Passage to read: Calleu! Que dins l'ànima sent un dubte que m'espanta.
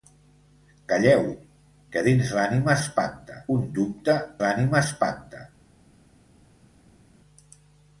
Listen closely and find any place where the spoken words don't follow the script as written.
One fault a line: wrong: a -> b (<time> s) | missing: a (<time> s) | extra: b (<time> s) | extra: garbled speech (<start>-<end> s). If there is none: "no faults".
wrong: sent -> m'espanta (2.8 s)
wrong: que -> l'ànima (4.5 s)